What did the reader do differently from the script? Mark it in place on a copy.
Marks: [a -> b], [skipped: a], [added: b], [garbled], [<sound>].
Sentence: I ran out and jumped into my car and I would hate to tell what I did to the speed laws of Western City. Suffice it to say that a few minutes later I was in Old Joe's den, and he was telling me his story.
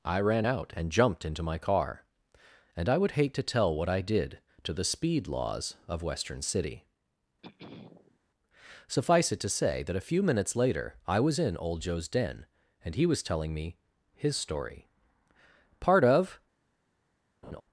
I ran out and jumped into my car and I would hate to tell what I did to the speed laws of Western City. [throat clearing] Suffice it to say that a few minutes later I was in Old Joe's den, and he was telling me his story. [added: Part of] [laugh]